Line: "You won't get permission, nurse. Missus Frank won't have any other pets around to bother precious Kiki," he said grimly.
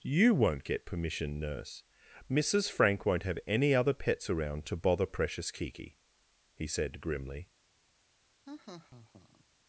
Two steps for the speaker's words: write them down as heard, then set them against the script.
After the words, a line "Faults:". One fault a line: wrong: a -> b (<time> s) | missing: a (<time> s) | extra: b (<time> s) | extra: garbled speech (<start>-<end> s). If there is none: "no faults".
"You won't get permission, nurse. Missus Frank won't have any other pets around to bother precious Kiki," he said grimly.
Faults:
no faults